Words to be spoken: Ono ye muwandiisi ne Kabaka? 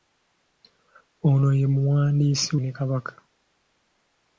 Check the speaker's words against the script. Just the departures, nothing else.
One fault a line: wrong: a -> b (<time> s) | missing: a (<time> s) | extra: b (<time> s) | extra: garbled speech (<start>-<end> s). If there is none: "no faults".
no faults